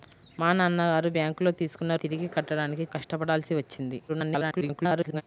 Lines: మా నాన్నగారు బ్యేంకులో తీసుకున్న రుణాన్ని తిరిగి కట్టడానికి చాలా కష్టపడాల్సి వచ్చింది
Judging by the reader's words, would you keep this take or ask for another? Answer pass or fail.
fail